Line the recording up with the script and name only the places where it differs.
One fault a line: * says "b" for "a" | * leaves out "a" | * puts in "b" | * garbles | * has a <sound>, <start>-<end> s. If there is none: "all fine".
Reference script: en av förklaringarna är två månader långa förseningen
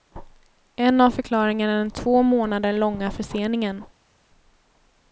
* puts in "den"